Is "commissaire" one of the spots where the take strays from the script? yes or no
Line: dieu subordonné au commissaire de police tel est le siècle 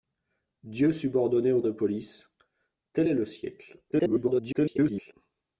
yes